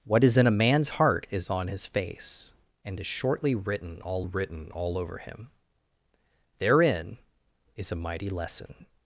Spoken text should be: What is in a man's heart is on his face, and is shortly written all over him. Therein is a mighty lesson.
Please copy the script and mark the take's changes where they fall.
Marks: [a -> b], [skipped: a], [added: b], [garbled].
What is in a man's heart is on his face, and is shortly written all [added: written all] over him. Therein is a mighty lesson.